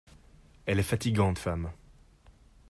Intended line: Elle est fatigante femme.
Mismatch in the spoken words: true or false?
false